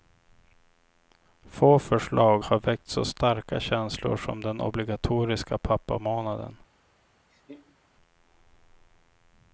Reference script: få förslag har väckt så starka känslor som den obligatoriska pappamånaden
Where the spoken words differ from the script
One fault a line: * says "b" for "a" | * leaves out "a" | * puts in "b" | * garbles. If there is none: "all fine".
all fine